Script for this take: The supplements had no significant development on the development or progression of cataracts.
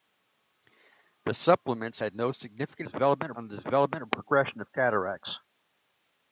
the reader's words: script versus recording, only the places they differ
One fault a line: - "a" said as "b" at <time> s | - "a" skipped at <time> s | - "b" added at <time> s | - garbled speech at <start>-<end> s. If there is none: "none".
none